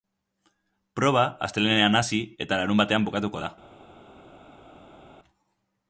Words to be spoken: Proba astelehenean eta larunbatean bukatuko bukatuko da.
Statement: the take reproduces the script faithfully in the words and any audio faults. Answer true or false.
false